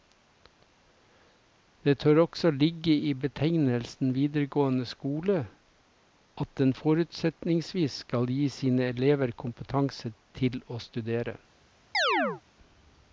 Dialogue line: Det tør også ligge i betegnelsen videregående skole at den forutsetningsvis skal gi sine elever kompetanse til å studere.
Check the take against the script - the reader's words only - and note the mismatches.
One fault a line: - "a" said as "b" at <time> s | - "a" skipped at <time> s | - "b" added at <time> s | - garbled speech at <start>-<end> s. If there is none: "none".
none